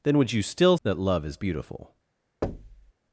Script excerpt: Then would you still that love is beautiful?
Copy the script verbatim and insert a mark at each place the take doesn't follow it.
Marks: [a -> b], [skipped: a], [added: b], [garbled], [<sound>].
Then would you still that love is beautiful? [thud]